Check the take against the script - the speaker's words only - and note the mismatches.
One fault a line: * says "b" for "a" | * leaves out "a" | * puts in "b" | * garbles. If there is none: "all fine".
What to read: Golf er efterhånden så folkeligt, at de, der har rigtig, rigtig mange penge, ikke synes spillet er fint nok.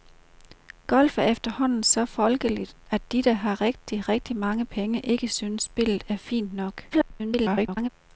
* garbles